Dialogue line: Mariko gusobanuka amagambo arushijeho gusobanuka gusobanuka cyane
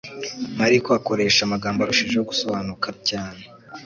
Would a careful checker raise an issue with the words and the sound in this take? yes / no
yes